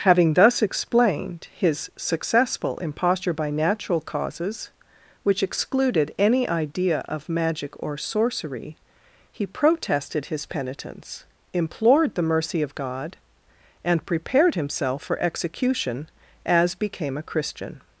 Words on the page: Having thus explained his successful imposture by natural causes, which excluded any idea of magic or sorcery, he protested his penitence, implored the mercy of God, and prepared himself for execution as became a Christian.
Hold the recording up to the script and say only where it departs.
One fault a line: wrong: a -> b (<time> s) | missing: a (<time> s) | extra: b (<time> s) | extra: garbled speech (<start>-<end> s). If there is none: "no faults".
no faults